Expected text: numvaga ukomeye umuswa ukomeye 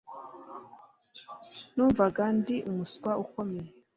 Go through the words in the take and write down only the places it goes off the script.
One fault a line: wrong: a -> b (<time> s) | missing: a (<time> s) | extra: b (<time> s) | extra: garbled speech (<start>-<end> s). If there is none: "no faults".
wrong: ukomeye -> ndi (2.4 s)